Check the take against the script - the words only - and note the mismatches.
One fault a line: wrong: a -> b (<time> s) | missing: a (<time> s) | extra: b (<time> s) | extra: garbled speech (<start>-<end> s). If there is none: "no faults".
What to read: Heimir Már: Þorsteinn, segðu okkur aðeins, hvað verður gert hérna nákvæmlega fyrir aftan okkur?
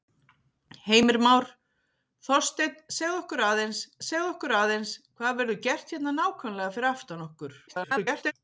extra: segðu okkur aðeins (4.1 s)
extra: garbled speech (7.7-8.3 s)